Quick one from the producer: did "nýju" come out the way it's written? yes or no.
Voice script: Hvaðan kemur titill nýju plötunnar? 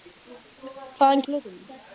no